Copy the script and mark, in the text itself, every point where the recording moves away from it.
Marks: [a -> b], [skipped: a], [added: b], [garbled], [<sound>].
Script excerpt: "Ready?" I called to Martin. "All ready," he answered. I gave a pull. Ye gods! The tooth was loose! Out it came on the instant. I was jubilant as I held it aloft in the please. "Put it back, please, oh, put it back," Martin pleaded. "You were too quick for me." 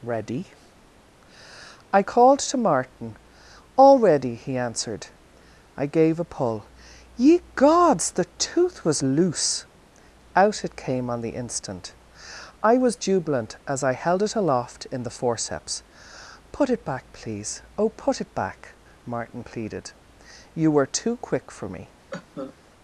"Ready?" I called to Martin. "All ready," he answered. I gave a pull. Ye gods! The tooth was loose! Out it came on the instant. I was jubilant as I held it aloft in the [please. -> forceps] "Put it back, please, oh, put it back," Martin pleaded. "You were too quick for me." [cough]